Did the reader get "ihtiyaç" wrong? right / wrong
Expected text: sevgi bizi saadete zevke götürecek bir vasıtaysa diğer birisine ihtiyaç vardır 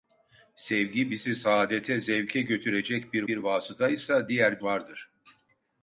wrong